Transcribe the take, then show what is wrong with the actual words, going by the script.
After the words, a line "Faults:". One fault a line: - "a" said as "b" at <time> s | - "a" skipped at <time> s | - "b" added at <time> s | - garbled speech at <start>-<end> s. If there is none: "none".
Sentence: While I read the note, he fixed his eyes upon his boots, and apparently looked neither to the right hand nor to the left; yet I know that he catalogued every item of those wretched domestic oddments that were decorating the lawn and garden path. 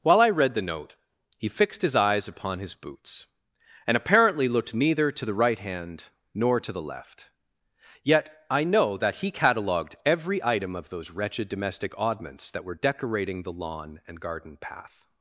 While I read the note, he fixed his eyes upon his boots, and apparently looked neither to the right hand nor to the left; yet I know that he catalogued every item of those wretched domestic oddments that were decorating the lawn and garden path.
Faults:
none